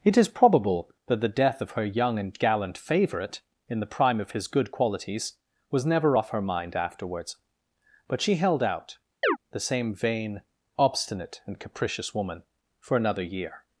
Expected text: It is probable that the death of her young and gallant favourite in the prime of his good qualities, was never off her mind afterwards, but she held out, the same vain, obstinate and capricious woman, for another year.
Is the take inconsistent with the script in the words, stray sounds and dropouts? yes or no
yes